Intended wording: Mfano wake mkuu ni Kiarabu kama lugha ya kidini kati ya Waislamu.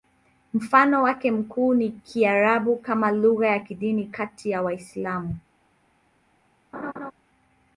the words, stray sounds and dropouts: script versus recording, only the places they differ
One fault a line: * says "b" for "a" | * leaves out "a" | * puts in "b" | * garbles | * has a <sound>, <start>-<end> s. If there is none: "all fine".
* has a laugh, 6.7-7.1 s